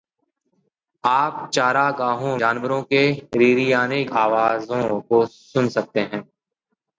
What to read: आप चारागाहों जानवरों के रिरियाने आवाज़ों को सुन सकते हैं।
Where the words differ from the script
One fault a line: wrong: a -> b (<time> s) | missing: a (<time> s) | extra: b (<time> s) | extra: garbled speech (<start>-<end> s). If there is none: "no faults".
no faults